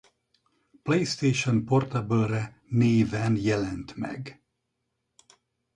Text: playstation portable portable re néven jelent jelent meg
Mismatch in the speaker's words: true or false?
true